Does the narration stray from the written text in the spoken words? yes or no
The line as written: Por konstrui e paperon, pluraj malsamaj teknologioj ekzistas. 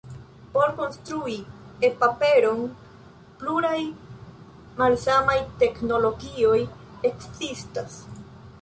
no